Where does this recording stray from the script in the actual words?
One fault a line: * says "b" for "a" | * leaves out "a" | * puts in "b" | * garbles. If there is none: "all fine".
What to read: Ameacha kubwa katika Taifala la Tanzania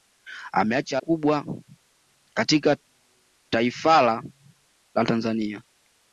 all fine